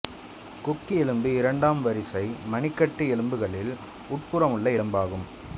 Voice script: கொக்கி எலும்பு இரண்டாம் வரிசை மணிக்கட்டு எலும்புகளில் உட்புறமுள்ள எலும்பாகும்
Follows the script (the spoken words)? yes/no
yes